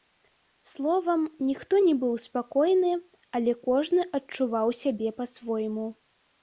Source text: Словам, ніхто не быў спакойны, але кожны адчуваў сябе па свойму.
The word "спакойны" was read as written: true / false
true